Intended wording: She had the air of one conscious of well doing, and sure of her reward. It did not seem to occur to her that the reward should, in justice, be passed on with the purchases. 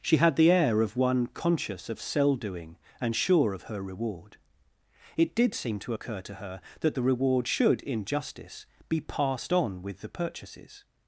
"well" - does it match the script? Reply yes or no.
no